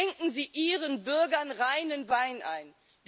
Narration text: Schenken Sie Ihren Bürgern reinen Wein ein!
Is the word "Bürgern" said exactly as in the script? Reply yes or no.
yes